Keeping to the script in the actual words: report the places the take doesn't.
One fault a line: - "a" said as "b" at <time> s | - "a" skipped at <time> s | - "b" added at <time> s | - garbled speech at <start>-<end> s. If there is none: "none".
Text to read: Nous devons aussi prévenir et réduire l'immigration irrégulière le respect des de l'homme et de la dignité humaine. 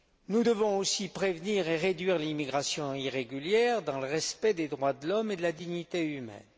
- "dans" added at 3.8 s
- "droits" added at 4.7 s